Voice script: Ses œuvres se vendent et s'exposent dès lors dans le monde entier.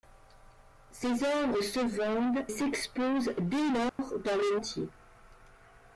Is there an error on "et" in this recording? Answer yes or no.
yes